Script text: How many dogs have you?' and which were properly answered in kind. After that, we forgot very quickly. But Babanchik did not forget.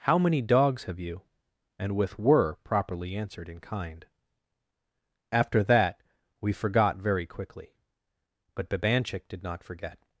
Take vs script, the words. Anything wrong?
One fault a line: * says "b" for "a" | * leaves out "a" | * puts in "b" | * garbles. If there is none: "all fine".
* says "with" for "which"